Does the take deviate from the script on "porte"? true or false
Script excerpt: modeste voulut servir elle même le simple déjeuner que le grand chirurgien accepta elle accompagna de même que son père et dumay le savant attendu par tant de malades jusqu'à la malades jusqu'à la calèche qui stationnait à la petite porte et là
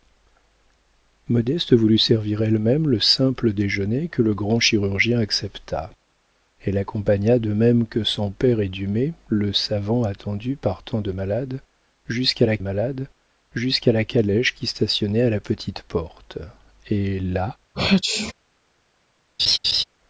false